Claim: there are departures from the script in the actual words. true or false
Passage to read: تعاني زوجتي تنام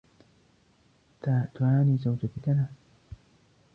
false